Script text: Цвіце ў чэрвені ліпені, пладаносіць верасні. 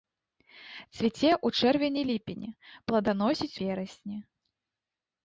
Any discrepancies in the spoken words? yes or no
no